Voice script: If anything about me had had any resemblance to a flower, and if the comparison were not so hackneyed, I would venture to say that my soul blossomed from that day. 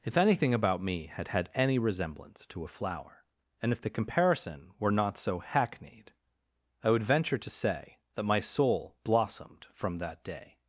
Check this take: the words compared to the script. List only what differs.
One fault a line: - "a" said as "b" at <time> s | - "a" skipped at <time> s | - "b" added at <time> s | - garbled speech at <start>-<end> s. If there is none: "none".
none